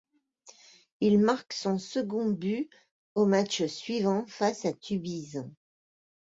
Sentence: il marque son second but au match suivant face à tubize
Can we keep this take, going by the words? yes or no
yes